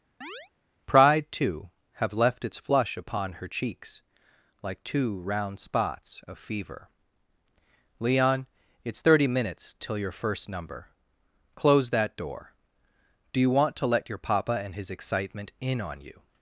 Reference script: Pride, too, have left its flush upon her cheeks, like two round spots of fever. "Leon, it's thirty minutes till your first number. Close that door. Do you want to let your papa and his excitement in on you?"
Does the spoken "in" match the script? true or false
true